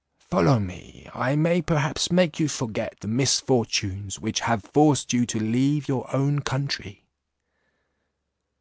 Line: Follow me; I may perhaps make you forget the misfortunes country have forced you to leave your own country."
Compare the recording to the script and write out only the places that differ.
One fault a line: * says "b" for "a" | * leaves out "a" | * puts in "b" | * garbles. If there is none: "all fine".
* says "which" for "country"